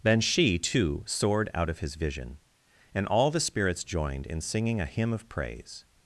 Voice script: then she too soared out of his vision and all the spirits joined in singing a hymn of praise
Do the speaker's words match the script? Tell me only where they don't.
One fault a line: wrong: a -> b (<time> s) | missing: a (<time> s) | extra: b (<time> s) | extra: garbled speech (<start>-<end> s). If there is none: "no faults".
no faults